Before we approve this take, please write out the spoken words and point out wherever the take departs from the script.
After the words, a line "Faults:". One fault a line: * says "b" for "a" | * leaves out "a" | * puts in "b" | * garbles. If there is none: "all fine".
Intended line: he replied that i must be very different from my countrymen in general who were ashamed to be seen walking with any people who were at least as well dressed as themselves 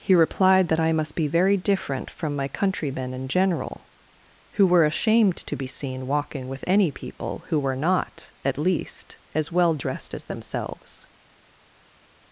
he replied that i must be very different from my countrymen in general who were ashamed to be seen walking with any people who were not at least as well dressed as themselves
Faults:
* puts in "not"